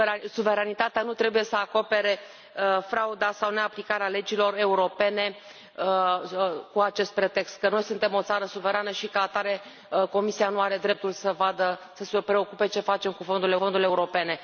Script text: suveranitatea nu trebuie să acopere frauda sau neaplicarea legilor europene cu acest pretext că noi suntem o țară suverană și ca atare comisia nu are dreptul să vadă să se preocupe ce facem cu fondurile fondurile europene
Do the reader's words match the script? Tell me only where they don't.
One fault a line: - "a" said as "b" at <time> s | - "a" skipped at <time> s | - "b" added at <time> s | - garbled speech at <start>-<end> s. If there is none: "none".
none